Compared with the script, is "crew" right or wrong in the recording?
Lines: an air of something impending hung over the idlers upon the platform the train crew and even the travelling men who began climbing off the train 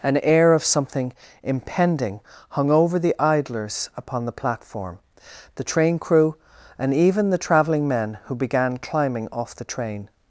right